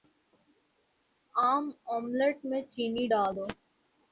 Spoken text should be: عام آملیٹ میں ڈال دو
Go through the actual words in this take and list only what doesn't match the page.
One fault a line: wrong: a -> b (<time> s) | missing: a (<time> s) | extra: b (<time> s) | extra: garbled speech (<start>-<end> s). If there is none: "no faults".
extra: چینی (2.7 s)